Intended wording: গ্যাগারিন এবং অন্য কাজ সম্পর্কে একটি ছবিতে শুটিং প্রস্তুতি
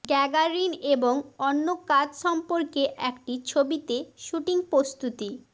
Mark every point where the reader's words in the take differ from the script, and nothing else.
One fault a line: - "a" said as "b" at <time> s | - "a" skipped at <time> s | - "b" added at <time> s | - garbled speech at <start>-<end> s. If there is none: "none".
none